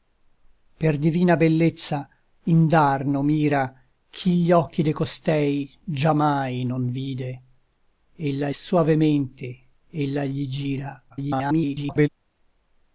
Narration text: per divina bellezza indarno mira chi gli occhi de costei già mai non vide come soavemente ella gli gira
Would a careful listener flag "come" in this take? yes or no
yes